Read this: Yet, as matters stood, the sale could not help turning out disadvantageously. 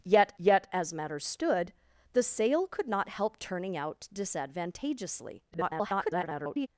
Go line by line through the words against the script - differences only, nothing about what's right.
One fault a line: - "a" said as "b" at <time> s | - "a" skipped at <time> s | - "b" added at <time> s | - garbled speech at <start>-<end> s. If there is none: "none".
- "yet" added at 0.4 s
- garbled speech at 5.5-6.7 s